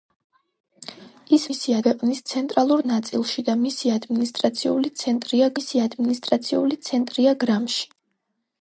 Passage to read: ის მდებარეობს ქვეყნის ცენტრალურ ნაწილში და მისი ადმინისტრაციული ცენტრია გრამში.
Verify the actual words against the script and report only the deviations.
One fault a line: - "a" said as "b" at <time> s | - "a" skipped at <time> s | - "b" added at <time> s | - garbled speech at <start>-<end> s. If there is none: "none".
- "მდებარეობს" said as "მისი" at 1.5 s
- "მისი ადმინისტრაციული ცენტრია" added at 5.6 s